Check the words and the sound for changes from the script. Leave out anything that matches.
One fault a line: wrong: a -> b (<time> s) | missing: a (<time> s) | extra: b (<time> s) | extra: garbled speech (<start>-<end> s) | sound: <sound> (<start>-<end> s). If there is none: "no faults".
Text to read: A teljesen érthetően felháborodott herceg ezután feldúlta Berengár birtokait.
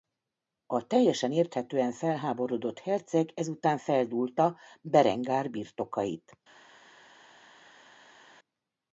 no faults